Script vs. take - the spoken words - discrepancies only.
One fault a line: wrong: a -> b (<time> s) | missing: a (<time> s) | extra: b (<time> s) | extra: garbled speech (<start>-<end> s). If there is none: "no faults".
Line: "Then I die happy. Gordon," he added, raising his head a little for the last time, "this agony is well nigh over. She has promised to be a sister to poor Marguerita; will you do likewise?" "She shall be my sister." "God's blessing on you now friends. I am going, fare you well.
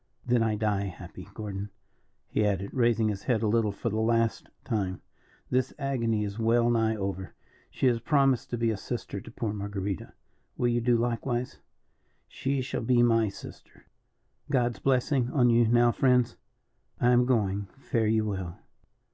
no faults